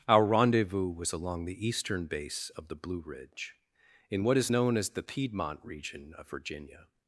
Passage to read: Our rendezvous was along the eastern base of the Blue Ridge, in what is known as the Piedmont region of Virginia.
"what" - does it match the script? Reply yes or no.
yes